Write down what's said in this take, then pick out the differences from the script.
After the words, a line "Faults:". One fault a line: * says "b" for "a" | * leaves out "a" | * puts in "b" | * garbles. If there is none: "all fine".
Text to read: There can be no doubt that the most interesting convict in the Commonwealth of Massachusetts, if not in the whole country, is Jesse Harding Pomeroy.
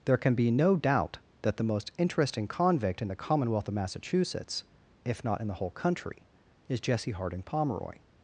There can be no doubt that the most interesting convict in the Commonwealth of Massachusetts, if not in the whole country, is Jesse Harding Pomeroy.
Faults:
all fine